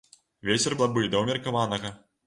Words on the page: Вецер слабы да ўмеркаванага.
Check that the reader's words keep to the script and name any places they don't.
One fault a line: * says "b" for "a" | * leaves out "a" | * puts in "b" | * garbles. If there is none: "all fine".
all fine